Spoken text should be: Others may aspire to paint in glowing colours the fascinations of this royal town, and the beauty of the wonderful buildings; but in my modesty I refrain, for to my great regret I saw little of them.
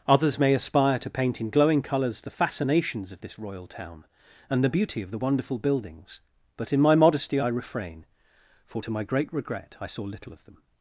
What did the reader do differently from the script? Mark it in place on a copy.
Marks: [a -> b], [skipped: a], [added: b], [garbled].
Others may aspire to paint in glowing colours the fascinations of this royal town, and the beauty of the wonderful buildings; but in my modesty I refrain, for to my great regret I saw little of them.